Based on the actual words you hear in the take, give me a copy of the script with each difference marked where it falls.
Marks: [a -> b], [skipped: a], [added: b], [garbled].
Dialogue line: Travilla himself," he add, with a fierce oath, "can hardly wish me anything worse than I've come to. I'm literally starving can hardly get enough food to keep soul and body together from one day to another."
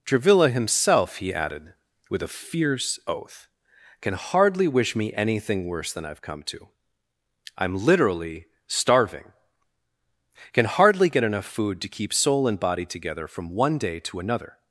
Travilla himself," he [add, -> added] with a fierce oath, "can hardly wish me anything worse than I've come to. I'm literally starving can hardly get enough food to keep soul and body together from one day to another."